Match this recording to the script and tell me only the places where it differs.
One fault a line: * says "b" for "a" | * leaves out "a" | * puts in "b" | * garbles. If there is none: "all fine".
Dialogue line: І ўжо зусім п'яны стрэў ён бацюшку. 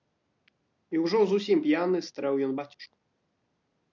all fine